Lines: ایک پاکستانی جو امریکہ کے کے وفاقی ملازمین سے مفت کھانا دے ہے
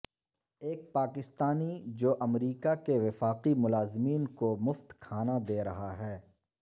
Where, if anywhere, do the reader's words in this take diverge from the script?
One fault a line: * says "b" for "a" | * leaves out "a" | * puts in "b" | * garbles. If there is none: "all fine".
* leaves out "کے"
* says "کو" for "سے"
* puts in "رہا"